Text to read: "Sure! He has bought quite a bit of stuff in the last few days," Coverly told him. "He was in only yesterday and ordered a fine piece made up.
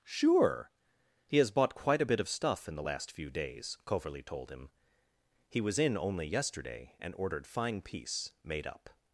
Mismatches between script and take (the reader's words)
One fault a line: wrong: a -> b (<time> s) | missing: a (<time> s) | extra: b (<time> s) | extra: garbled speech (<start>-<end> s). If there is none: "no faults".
missing: a (7.5 s)